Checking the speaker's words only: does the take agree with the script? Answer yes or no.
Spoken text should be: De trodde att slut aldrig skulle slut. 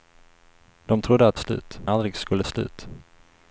yes